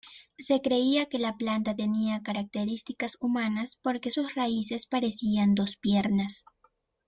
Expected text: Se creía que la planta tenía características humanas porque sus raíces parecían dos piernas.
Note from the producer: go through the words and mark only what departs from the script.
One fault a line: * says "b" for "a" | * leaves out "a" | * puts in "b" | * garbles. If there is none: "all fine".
all fine